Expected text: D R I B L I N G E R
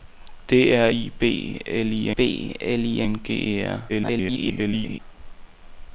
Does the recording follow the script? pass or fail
fail